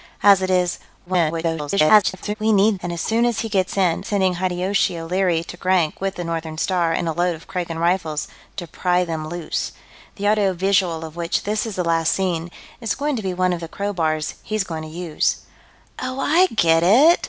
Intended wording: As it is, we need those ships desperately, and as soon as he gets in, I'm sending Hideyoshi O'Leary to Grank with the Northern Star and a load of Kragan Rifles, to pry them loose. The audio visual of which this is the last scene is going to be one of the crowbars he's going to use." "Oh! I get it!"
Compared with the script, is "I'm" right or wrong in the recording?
wrong